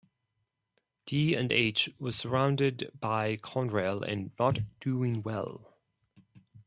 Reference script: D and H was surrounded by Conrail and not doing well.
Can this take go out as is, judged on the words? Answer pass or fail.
pass